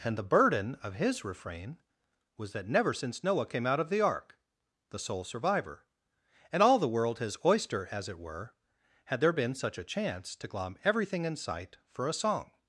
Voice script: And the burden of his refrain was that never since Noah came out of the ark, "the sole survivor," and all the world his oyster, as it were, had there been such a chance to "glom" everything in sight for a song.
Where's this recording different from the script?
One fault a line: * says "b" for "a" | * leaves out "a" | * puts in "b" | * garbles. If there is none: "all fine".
all fine